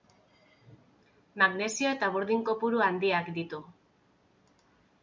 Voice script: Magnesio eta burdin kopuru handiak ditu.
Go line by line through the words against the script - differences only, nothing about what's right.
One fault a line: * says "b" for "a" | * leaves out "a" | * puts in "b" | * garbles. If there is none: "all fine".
all fine